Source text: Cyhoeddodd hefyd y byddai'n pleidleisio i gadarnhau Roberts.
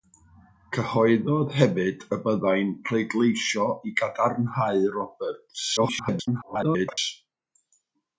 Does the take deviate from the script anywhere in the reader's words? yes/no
yes